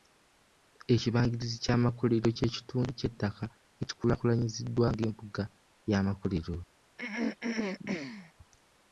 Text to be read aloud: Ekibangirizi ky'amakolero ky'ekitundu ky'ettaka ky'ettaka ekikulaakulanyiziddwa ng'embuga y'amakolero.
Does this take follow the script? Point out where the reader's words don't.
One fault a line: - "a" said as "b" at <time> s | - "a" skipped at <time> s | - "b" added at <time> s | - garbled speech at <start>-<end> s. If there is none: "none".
- "ky'ettaka" skipped at 3.4 s